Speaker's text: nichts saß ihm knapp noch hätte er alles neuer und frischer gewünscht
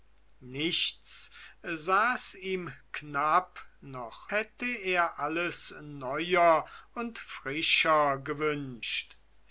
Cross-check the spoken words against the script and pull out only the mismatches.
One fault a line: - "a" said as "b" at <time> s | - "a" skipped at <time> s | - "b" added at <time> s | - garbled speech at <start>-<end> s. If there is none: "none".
none